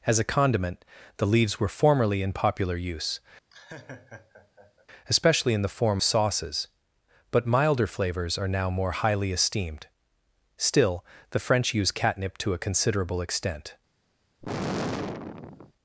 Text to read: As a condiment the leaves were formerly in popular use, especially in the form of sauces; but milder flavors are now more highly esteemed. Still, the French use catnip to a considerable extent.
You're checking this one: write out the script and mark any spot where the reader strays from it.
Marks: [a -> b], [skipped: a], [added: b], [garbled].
As a condiment the leaves were formerly in popular use, especially in the form [skipped: of] sauces; but milder flavors are now more highly esteemed. Still, the French use catnip to a considerable extent.